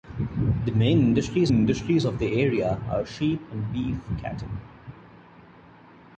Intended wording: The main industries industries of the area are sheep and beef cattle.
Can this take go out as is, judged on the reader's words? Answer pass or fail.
pass